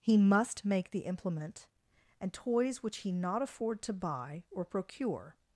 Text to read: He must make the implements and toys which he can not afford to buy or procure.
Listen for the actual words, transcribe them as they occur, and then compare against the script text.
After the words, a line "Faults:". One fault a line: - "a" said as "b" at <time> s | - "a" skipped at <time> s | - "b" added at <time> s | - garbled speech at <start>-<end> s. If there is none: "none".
He must make the implement and toys which he not afford to buy or procure.
Faults:
- "implements" said as "implement" at 1.0 s
- "can" skipped at 3.1 s